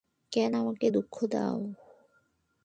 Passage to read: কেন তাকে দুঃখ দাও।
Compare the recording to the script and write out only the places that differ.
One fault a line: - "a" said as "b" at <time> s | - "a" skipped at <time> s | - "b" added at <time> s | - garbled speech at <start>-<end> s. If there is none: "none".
- "তাকে" said as "আমাকে" at 0.5 s